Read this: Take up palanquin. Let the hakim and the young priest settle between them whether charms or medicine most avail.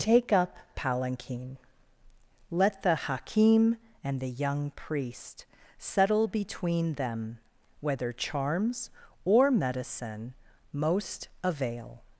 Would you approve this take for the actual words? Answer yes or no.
yes